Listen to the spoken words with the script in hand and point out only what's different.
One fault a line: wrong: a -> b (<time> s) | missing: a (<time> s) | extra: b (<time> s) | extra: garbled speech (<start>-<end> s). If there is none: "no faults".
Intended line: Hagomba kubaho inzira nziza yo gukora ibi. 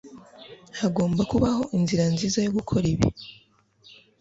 no faults